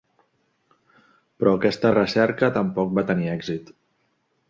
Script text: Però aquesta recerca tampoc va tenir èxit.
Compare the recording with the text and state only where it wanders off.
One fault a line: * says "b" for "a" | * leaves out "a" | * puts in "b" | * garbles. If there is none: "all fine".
all fine